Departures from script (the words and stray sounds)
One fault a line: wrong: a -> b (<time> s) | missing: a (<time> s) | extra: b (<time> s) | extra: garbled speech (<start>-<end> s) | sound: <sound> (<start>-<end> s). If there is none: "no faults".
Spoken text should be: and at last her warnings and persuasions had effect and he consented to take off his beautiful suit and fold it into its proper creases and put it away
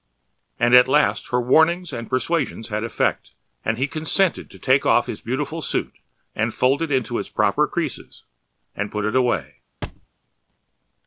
sound: thud (9.8-10.1 s)